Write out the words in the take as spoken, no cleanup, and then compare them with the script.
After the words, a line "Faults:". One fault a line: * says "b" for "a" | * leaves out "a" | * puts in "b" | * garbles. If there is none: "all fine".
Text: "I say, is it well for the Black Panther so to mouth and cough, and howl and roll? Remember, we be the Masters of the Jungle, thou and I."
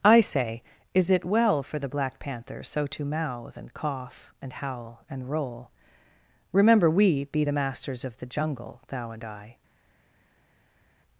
"I say, is it well for the Black Panther so to mouth and cough, and howl and roll? Remember, we be the Masters of the Jungle, thou and I."
Faults:
all fine